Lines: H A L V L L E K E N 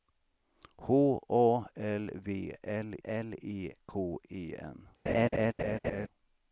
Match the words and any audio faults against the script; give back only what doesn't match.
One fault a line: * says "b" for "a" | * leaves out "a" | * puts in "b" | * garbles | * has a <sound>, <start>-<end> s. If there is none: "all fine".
* has a laugh, 5.1-6.1 s